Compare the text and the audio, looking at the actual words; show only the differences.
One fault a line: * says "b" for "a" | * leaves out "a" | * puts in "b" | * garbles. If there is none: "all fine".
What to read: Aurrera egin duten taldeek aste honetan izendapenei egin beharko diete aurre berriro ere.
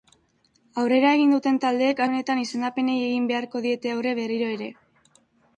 * leaves out "aste"